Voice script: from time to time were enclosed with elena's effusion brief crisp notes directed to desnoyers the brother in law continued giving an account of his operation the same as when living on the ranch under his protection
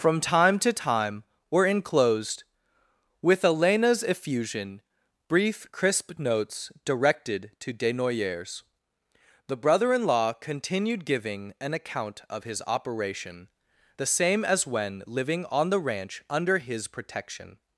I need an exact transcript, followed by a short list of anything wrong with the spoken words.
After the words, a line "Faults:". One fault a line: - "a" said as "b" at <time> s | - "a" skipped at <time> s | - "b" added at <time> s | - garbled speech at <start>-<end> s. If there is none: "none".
from time to time were enclosed with elena's effusion brief crisp notes directed to desnoyers the brother in law continued giving an account of his operation the same as when living on the ranch under his protection
Faults:
none